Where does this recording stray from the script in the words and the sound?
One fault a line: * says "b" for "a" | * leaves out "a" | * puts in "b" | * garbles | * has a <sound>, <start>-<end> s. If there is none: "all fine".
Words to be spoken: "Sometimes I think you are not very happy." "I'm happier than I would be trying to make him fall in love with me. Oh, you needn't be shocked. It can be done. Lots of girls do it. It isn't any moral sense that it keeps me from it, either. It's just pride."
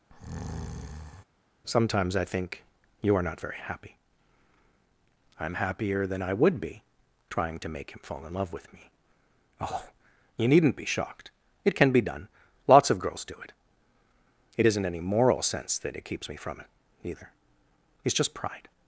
* has a breath, 0.1-1.2 s